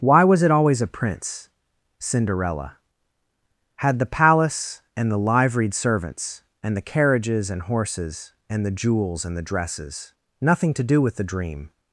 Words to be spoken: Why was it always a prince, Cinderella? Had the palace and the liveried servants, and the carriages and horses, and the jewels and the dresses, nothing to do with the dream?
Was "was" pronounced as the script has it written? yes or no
yes